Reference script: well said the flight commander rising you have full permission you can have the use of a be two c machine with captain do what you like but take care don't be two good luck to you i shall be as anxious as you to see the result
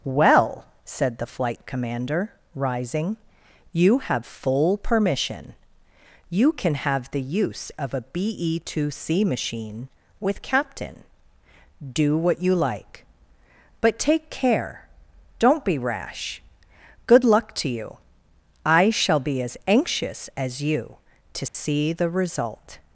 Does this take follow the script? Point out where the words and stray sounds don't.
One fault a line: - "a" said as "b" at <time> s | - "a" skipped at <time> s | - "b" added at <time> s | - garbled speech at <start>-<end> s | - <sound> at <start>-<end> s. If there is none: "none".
- "two" said as "rash" at 15.8 s
- dropout at 21.5-21.5 s